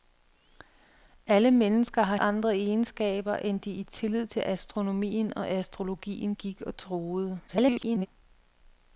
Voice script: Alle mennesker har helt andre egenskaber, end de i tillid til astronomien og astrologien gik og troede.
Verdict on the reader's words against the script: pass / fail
fail